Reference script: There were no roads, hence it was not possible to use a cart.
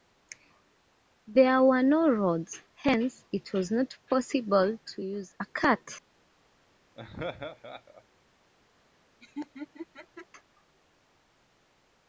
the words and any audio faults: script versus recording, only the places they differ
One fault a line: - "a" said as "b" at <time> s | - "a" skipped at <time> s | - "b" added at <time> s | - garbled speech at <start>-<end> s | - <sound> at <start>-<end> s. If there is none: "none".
- laugh at 6.9-8.0 s
- laugh at 9.2-10.3 s